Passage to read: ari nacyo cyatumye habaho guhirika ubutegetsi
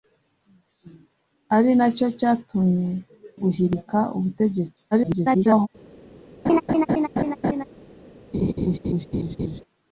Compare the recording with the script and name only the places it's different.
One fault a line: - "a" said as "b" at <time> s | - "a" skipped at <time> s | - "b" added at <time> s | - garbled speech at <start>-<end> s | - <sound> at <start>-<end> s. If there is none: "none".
- "habaho" skipped at 2.9 s
- garbled speech at 4.9-5.7 s
- laugh at 6.5-7.6 s
- laugh at 8.3-9.6 s